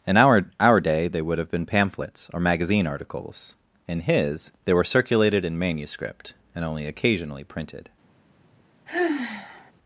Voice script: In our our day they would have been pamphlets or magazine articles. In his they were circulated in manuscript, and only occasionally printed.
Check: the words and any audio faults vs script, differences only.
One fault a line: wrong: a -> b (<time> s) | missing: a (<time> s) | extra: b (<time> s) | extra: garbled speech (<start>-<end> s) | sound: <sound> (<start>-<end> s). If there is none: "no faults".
sound: sigh (8.9-9.7 s)